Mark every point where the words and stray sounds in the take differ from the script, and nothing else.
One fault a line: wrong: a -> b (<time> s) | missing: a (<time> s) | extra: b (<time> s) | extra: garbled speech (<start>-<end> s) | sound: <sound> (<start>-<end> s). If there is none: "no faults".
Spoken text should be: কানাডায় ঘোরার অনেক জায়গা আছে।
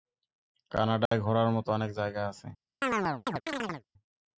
sound: dropout (1.1-1.1 s)
extra: মতো (1.6 s)
sound: chirp (2.8-3.8 s)